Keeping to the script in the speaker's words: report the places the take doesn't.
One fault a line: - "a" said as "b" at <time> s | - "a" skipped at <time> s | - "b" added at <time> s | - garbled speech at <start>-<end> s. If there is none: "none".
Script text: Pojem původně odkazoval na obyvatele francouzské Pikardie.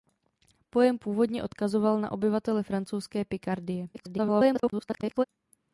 - garbled speech at 3.9-5.2 s